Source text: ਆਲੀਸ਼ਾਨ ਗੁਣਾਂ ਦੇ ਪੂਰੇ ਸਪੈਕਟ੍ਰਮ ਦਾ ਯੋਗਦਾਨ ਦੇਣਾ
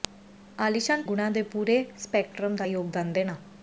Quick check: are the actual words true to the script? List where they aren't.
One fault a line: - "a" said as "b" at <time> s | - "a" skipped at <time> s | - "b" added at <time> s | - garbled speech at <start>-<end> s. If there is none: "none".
none